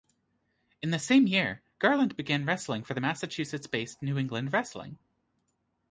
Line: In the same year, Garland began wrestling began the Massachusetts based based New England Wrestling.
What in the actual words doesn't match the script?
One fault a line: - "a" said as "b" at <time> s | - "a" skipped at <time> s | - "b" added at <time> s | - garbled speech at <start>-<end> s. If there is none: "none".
- "began" said as "for" at 2.8 s
- "based" skipped at 4.0 s